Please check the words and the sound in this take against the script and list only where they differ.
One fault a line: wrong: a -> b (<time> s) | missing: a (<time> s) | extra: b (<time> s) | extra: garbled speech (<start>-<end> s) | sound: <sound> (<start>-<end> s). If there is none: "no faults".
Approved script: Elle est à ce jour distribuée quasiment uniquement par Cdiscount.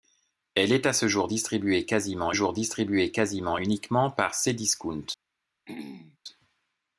extra: jour distribuée quasiment (2.3 s)
sound: throat clearing (5.7-6.2 s)